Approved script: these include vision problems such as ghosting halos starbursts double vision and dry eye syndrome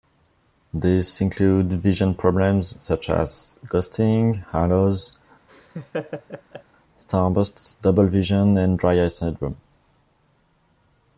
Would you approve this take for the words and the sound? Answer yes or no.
no